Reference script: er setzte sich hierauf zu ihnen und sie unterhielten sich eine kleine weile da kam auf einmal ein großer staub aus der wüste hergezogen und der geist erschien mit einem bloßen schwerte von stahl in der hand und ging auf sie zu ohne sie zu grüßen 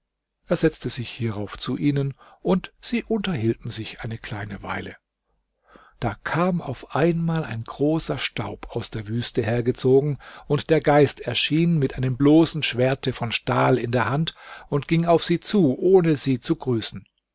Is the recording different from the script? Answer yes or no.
no